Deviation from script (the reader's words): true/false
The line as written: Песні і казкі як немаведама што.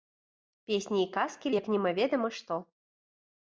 false